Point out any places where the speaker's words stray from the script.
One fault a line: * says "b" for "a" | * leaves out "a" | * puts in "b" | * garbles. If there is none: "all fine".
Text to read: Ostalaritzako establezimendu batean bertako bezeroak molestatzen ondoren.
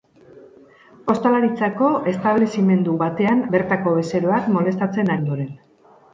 all fine